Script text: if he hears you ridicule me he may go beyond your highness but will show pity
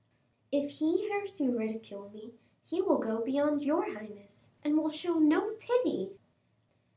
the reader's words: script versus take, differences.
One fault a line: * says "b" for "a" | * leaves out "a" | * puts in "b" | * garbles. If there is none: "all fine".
* says "will" for "may"
* says "and" for "but"
* puts in "no"